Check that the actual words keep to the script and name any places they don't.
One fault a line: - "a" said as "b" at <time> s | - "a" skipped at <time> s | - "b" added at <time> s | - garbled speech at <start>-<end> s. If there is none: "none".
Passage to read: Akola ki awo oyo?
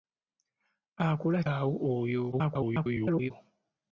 - "ki" skipped at 1.4 s
- garbled speech at 2.3-3.3 s